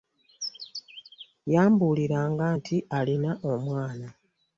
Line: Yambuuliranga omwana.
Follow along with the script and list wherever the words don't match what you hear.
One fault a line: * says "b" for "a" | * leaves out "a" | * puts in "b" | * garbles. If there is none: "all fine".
* puts in "nti alina"